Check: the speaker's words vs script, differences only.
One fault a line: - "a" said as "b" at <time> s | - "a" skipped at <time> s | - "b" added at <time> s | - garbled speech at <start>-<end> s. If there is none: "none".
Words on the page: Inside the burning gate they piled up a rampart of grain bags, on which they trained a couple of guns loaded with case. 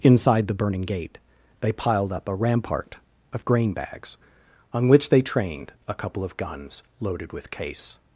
none